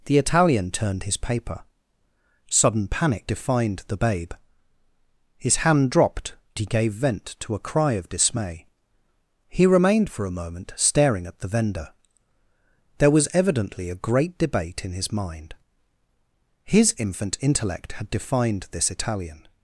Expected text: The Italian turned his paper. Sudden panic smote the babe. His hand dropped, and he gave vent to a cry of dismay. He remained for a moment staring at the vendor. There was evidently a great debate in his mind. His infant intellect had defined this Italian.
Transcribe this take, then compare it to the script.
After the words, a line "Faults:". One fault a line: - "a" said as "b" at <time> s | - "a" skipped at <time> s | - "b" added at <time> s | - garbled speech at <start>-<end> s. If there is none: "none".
The Italian turned his paper. Sudden panic defined the babe. His hand dropped, he gave vent to a cry of dismay. He remained for a moment staring at the vendor. There was evidently a great debate in his mind. His infant intellect had defined this Italian.
Faults:
- "smote" said as "defined" at 3.3 s
- "and" skipped at 6.4 s